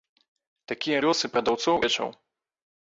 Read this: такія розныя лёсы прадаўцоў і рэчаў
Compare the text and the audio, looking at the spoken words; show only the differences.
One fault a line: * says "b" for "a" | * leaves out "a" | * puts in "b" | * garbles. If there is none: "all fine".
* leaves out "розныя"
* leaves out "і"